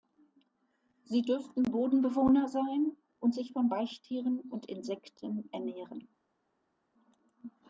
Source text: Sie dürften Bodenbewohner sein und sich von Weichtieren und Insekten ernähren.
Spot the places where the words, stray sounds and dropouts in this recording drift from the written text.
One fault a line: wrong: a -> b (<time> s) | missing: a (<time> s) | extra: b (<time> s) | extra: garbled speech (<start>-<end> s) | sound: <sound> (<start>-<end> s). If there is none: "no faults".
no faults